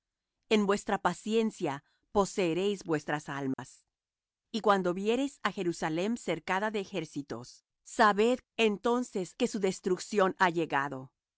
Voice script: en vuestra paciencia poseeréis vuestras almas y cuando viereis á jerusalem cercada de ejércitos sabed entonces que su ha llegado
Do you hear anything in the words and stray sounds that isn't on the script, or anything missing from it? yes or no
yes